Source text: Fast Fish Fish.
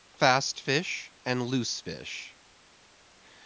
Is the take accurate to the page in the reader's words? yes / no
no